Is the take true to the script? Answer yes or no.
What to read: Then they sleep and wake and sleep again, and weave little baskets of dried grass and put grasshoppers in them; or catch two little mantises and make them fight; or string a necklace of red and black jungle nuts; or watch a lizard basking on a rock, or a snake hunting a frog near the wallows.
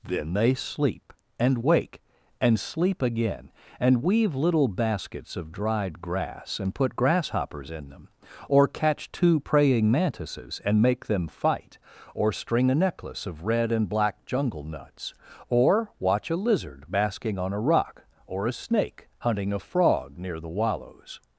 no